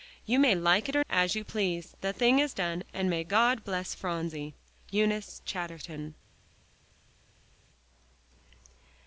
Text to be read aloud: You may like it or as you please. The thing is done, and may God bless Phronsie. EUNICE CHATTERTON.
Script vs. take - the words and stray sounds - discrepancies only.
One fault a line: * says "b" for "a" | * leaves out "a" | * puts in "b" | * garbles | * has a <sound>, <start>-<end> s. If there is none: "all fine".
all fine